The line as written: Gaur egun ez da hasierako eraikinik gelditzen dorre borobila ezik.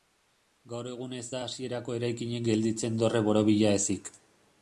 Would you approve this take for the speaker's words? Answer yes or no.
yes